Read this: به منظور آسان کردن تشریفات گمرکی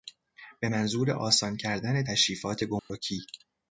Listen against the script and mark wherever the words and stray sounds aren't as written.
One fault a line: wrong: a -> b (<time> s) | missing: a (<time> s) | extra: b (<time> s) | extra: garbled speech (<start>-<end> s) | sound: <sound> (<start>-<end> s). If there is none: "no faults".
sound: dropout (2.8-2.9 s)